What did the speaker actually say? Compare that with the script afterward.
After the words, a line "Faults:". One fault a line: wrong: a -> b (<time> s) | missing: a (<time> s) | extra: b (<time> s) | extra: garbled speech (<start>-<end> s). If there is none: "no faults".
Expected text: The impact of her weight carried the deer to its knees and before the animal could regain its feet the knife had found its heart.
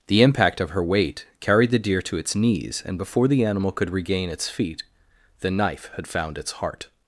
The impact of her weight carried the deer to its knees and before the animal could regain its feet the knife had found its heart.
Faults:
no faults